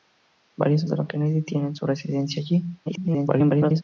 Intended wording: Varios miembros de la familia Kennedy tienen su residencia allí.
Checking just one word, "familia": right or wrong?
wrong